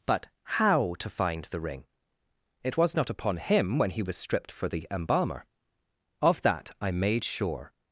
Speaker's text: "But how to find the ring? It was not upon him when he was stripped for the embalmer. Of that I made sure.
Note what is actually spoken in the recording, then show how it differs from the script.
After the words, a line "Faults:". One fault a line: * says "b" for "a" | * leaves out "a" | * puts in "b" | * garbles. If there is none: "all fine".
"But how to find the ring? It was not upon him when he was stripped for the embalmer. Of that I made sure.
Faults:
all fine